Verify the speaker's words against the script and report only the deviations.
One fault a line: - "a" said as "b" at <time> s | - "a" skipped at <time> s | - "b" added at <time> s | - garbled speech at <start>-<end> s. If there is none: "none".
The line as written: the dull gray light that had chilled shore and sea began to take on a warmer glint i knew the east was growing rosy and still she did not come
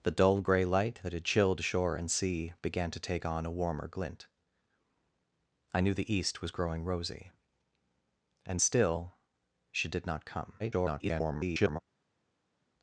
- garbled speech at 10.6-11.8 s